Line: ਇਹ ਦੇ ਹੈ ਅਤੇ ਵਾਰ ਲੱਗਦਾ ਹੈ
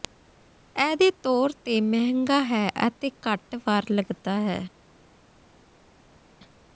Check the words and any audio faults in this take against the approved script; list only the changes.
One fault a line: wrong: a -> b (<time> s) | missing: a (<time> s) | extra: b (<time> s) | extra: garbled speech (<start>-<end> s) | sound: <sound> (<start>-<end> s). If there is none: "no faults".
extra: ਤੌਰ ਤੇ ਮਹਿੰਗਾ (1.2 s)
extra: ਘੱਟ (3.3 s)